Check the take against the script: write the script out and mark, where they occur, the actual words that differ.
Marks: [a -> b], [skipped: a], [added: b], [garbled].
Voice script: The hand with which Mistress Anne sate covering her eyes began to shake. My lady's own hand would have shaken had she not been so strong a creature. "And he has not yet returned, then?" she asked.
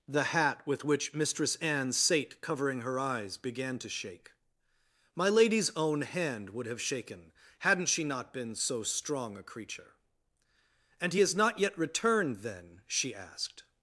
The [hand -> hat] with which Mistress Anne sate covering her eyes began to shake. My lady's own hand would have shaken [had -> hadn't] she not been so strong a creature. "And he has not yet returned, then?" she asked.